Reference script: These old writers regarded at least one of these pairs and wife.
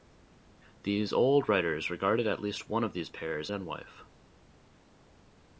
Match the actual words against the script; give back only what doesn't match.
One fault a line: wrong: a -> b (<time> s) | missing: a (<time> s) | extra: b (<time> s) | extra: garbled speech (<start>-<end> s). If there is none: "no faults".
no faults